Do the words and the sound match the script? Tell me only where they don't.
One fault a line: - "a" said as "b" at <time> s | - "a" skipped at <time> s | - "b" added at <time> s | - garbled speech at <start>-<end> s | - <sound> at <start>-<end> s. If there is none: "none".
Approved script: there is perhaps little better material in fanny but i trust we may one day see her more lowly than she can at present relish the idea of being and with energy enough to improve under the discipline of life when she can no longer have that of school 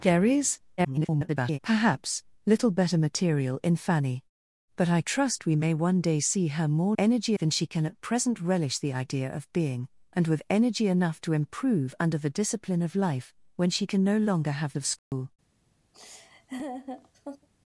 - garbled speech at 0.8-1.6 s
- "lowly" said as "energy" at 7.0 s
- "that" skipped at 14.8 s
- dropout at 15.0-15.1 s
- laugh at 15.9-17.5 s